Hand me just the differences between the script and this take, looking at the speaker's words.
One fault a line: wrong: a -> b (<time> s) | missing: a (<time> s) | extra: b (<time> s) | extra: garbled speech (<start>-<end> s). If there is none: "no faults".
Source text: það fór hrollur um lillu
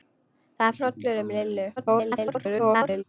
missing: fór (0.8 s)
extra: garbled speech (1.8-3.0 s)